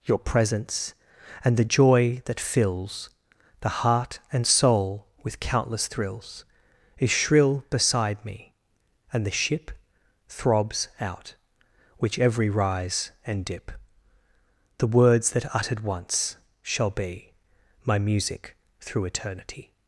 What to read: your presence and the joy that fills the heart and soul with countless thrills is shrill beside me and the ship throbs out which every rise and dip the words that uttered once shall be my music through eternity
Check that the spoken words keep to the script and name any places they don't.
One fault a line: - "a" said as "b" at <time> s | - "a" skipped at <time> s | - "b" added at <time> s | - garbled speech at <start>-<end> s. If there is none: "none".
none